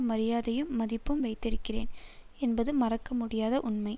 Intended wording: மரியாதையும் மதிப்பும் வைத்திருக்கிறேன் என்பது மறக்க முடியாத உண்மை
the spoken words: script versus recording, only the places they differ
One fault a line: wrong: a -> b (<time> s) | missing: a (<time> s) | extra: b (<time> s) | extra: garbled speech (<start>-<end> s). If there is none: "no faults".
no faults